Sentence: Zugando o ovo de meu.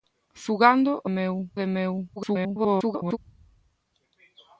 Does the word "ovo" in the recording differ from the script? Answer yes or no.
yes